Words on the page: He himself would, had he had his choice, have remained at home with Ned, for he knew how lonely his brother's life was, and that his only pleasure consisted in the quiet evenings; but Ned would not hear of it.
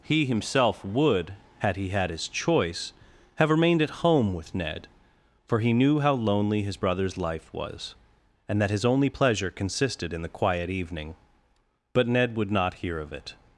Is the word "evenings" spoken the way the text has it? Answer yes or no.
no